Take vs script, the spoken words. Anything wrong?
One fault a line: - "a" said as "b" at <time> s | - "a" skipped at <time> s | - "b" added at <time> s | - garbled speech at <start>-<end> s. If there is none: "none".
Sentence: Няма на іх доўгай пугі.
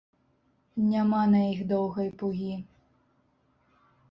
none